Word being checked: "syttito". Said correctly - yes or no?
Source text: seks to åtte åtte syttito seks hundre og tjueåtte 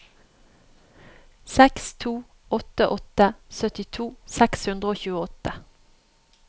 yes